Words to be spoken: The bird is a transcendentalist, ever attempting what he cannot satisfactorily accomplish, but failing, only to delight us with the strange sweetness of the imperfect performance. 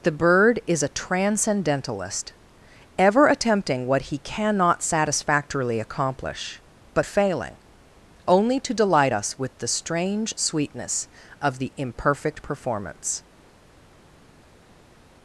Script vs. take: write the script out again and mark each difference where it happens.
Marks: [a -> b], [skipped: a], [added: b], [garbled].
The bird is a transcendentalist, ever attempting what he cannot satisfactorily accomplish, but failing, only to delight us with the strange sweetness of the imperfect performance.